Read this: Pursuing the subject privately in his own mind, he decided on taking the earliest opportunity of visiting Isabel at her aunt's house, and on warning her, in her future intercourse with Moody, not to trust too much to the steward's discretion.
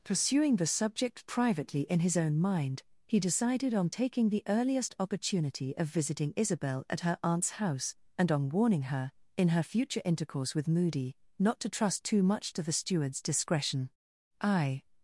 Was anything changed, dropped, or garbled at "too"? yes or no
no